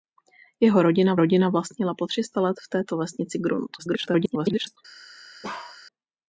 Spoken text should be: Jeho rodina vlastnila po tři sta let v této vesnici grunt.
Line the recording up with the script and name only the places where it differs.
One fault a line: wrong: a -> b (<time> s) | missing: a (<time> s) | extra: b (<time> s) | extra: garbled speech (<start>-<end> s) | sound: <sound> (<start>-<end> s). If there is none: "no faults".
extra: rodina (1.2 s)
extra: garbled speech (3.8-4.8 s)
sound: bark (5.4-5.8 s)